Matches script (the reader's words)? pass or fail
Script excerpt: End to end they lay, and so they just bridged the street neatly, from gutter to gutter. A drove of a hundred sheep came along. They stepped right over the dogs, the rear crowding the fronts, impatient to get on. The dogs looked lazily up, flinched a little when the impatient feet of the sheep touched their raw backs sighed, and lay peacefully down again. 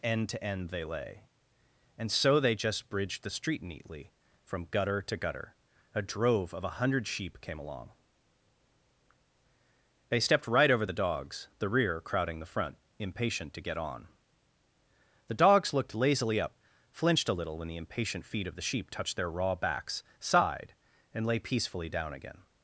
fail